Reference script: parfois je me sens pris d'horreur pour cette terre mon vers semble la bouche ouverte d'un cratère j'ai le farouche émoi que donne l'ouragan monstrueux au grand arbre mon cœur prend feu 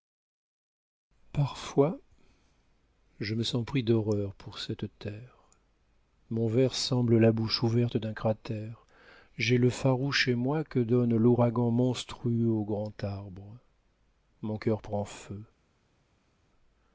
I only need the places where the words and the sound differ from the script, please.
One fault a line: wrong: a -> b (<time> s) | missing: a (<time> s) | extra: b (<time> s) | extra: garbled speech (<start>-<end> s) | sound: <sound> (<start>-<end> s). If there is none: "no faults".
no faults